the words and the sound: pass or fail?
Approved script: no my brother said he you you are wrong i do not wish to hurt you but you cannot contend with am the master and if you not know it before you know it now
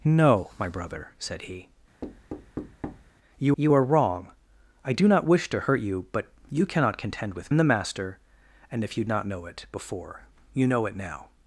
fail